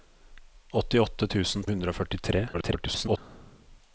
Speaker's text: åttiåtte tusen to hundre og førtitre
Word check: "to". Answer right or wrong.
wrong